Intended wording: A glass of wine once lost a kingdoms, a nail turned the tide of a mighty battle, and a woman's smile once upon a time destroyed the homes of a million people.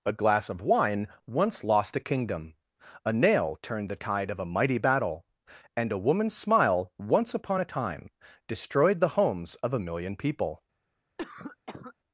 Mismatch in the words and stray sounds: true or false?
true